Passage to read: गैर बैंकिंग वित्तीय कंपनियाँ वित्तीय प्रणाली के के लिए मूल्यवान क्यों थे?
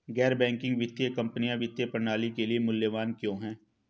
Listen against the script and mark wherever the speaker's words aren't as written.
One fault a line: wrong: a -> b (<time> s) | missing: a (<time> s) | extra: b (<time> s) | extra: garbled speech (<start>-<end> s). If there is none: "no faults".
missing: के (2.5 s)
wrong: थे -> हैं (3.4 s)